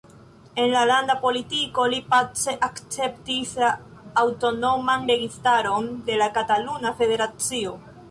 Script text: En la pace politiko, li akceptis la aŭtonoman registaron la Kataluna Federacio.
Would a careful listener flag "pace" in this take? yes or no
yes